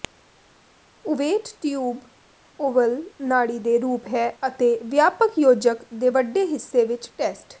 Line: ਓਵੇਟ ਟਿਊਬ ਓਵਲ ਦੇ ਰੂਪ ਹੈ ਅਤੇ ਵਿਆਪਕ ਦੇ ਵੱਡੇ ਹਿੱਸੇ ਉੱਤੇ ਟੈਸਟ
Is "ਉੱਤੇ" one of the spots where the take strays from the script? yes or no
yes